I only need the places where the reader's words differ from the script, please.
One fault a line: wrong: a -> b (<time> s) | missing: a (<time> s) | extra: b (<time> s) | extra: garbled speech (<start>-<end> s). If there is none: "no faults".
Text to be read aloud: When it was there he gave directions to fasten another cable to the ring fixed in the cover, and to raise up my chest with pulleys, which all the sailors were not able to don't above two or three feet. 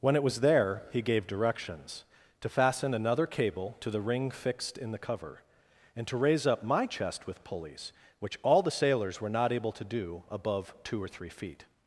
wrong: don't -> do (9.8 s)